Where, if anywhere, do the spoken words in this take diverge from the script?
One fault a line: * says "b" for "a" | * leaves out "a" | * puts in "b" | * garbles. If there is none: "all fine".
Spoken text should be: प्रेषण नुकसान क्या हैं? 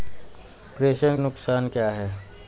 all fine